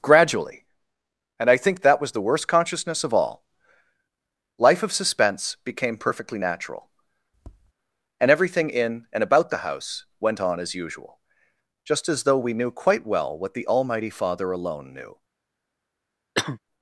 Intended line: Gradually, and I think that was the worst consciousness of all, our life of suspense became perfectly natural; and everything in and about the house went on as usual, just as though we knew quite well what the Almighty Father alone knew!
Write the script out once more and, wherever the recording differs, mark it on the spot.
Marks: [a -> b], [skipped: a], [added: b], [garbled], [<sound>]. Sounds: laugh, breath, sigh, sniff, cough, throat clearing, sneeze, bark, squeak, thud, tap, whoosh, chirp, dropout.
Gradually, and I think that was the worst consciousness of all, [skipped: our] life of suspense became perfectly natural; [tap] and everything in and about the house went on as usual, just as though we knew quite well what the Almighty Father alone knew! [cough]